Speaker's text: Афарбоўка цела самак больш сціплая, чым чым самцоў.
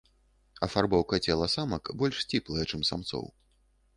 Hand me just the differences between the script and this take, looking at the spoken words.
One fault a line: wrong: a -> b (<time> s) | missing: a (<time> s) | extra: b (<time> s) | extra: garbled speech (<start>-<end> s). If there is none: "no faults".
missing: чым (2.9 s)